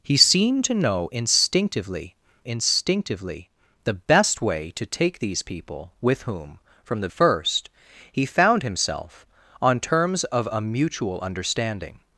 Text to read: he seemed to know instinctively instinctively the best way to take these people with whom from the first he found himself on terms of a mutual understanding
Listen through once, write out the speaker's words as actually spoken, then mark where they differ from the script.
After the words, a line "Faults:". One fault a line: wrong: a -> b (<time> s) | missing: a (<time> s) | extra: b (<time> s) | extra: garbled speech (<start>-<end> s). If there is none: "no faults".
he seemed to know instinctively instinctively the best way to take these people with whom from the first he found himself on terms of a mutual understanding
Faults:
no faults